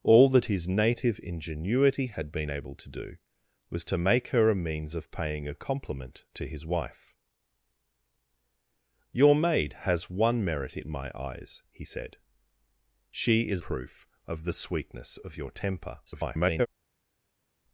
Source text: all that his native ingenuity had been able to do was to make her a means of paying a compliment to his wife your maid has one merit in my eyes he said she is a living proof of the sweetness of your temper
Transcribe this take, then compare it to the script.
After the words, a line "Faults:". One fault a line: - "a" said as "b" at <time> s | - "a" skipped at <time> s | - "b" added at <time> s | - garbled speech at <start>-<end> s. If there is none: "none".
all that his native ingenuity had been able to do was to make her a means of paying a compliment to his wife your maid has one merit in my eyes he said she is proof of the sweetness of your temper [garbled]
Faults:
- "a living" skipped at 13.6 s
- garbled speech at 16.1-16.7 s